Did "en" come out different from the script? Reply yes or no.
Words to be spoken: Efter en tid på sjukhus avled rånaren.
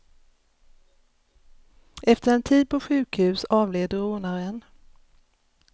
no